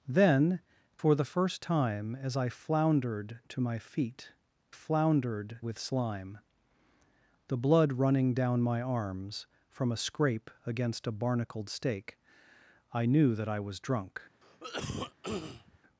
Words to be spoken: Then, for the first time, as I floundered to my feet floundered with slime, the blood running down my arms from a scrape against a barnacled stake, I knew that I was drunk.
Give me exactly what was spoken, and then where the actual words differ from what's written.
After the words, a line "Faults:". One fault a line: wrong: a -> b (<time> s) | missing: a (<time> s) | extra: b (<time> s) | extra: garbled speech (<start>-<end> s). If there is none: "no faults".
Then, for the first time, as I floundered to my feet floundered with slime, the blood running down my arms from a scrape against a barnacled stake, I knew that I was drunk.
Faults:
no faults